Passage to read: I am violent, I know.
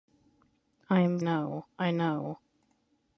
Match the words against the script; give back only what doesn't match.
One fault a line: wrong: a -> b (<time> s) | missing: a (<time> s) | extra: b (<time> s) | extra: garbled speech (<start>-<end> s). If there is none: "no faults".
wrong: violent -> know (1.2 s)